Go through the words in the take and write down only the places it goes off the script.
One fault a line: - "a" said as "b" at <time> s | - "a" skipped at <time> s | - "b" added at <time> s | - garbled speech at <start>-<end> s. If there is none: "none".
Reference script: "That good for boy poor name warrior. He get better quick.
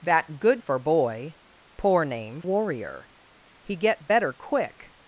none